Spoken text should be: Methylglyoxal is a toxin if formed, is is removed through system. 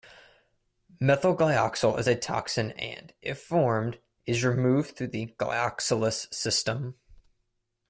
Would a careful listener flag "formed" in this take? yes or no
no